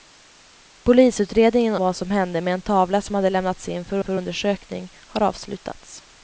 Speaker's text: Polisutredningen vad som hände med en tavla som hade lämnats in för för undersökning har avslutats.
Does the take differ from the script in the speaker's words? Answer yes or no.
no